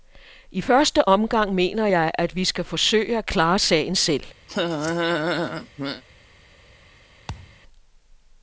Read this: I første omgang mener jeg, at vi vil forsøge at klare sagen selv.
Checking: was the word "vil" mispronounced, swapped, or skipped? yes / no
yes